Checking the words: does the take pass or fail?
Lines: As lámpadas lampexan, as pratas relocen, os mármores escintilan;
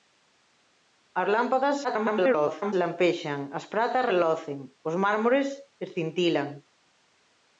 fail